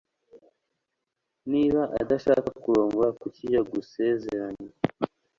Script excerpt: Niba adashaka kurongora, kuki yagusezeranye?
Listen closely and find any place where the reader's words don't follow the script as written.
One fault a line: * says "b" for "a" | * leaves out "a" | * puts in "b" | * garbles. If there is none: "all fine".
all fine